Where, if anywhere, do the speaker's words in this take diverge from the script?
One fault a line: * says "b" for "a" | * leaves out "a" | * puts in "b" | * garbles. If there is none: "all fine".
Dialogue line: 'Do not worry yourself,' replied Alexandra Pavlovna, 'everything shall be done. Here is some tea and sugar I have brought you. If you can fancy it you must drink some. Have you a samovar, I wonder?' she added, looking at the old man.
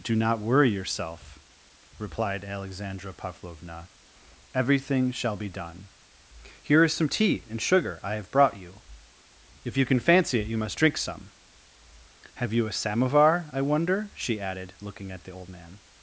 all fine